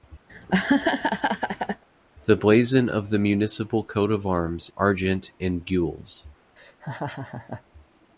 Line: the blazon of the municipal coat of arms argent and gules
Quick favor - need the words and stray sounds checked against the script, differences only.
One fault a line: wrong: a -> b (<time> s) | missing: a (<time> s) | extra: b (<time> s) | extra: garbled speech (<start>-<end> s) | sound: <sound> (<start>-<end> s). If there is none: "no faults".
sound: laugh (0.3-1.8 s)
sound: laugh (6.6-7.6 s)